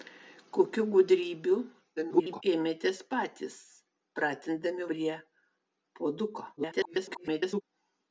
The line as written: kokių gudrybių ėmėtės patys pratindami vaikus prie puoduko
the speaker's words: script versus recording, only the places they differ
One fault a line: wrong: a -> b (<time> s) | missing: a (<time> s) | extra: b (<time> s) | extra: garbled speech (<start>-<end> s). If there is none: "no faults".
extra: garbled speech (2.0-2.4 s)
missing: vaikus (4.9 s)
extra: garbled speech (6.6-7.6 s)